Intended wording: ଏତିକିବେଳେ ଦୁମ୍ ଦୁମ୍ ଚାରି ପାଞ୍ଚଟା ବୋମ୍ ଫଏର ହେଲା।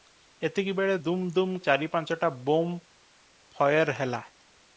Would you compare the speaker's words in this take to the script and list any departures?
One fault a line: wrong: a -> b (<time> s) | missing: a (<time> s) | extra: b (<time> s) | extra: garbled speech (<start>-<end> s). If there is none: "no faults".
no faults